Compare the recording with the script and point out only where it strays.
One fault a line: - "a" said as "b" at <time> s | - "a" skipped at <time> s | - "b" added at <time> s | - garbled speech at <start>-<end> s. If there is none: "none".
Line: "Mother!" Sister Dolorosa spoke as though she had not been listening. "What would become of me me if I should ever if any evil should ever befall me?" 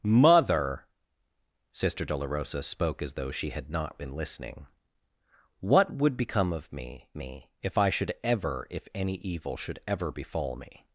none